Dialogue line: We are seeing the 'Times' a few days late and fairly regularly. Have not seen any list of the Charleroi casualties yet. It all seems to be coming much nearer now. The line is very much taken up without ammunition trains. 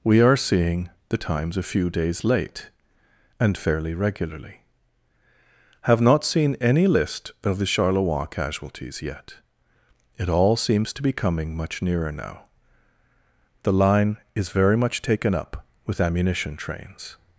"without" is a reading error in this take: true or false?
true